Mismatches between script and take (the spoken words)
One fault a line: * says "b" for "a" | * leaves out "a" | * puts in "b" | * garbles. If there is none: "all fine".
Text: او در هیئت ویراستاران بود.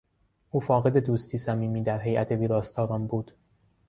* puts in "فاقد دوستی صمیمی"